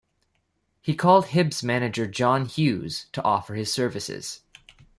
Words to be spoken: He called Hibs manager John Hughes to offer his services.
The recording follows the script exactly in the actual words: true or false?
true